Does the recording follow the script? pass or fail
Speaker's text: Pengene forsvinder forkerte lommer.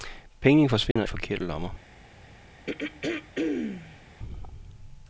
pass